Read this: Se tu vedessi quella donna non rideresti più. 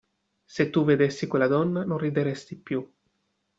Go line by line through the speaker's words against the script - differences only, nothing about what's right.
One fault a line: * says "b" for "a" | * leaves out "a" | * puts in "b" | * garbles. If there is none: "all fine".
all fine